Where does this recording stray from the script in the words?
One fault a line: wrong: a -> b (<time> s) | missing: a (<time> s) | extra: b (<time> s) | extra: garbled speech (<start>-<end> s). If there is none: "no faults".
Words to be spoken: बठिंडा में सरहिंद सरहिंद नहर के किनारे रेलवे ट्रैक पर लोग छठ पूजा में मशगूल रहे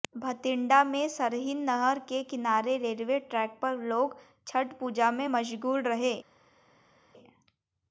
missing: सरहिंद (1.6 s)